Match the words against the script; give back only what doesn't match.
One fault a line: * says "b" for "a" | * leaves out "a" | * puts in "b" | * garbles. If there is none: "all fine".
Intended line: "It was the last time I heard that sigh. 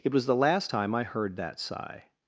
all fine